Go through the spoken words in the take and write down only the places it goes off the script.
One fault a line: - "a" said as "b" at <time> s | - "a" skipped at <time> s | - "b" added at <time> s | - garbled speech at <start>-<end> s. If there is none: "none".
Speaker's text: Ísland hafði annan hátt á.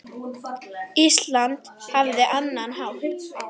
none